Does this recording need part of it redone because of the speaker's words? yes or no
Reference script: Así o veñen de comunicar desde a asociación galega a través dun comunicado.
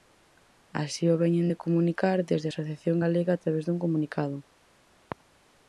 no